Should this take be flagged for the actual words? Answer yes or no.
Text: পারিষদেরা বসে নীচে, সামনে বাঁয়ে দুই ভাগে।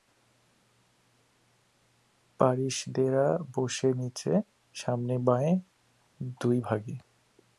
no